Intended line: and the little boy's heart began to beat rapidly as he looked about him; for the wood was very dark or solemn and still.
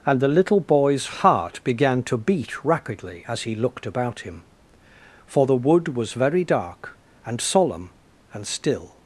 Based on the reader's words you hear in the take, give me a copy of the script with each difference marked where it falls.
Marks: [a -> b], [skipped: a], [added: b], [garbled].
and the little boy's heart began to beat rapidly as he looked about him; for the wood was very dark [or -> and] solemn and still.